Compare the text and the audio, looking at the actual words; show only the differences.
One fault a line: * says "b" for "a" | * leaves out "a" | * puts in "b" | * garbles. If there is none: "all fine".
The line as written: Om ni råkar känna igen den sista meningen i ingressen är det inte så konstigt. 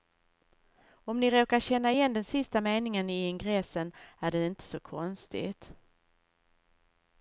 all fine